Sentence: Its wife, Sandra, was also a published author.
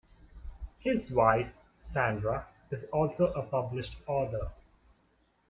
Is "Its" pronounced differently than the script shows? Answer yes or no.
yes